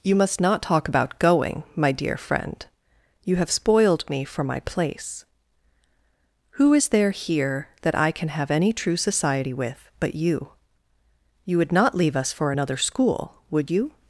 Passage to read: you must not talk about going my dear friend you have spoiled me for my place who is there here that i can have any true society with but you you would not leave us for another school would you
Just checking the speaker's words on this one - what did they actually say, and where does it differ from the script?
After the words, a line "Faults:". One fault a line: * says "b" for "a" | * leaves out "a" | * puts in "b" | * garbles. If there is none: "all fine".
you must not talk about going my dear friend you have spoiled me for my place who is there here that i can have any true society with but you you would not leave us for another school would you
Faults:
all fine